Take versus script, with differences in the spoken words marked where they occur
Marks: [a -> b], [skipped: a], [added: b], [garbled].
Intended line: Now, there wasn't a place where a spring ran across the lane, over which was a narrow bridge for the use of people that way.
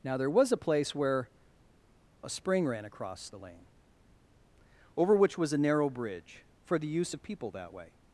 Now, there [wasn't -> was] a place where a spring ran across the lane, over which was a narrow bridge for the use of people that way.